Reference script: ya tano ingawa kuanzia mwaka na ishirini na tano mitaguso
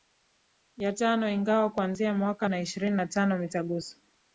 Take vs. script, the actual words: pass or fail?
pass